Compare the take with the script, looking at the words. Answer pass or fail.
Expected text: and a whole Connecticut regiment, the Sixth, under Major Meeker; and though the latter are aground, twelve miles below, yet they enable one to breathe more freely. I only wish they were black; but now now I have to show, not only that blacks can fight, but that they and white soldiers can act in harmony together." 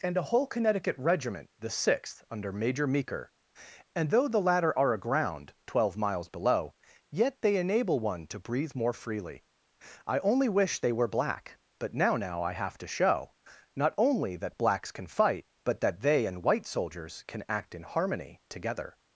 pass